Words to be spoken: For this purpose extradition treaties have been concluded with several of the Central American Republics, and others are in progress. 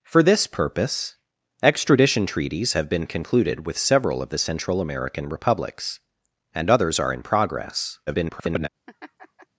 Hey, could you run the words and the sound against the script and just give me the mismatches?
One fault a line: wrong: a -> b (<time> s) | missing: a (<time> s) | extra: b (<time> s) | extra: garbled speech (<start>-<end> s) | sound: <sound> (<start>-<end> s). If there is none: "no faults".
extra: garbled speech (8.1-8.7 s)
sound: laugh (8.9-9.5 s)